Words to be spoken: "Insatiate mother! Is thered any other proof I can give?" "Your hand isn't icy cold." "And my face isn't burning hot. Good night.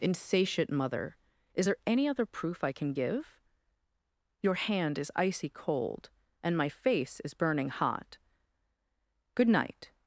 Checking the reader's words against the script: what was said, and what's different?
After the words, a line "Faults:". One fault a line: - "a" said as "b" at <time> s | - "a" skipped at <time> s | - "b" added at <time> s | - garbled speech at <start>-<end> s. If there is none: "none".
"Insatiate mother! Is there any other proof I can give?" "Your hand is icy cold." "And my face is burning hot. Good night.
Faults:
- "thered" said as "there" at 1.7 s
- "isn't" said as "is" at 5.0 s
- "isn't" said as "is" at 7.2 s